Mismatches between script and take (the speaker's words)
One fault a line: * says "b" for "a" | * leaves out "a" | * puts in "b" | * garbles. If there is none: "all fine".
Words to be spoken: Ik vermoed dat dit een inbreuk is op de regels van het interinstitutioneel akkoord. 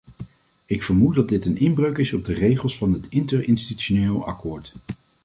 all fine